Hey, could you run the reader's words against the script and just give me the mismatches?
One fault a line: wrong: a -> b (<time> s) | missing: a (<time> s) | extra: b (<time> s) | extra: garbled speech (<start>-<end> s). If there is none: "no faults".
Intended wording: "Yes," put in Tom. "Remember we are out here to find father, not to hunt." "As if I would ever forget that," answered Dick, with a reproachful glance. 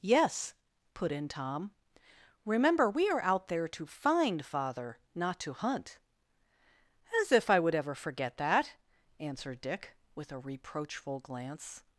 wrong: here -> there (3.5 s)